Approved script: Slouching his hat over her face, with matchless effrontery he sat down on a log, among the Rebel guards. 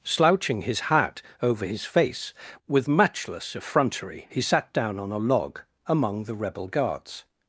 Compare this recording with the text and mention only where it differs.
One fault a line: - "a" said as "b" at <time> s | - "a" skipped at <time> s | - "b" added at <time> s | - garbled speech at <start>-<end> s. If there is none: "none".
- "her" said as "his" at 1.6 s